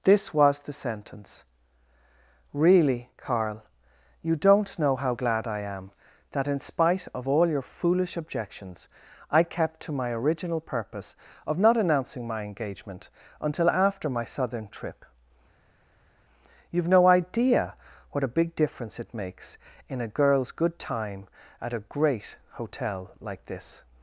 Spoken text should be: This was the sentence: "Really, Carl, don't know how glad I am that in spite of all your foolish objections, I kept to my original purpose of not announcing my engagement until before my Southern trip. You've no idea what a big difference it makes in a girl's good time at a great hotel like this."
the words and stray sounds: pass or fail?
fail